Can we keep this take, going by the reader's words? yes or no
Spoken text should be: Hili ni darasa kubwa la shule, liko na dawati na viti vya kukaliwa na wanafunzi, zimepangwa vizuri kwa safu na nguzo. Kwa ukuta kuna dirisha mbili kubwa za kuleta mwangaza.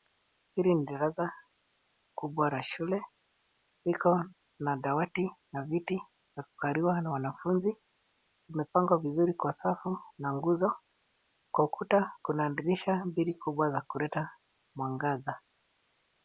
yes